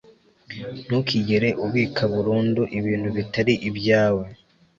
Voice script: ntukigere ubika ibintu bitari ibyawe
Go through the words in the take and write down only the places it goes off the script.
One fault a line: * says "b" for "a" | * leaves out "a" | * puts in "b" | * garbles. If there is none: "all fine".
* puts in "burundu"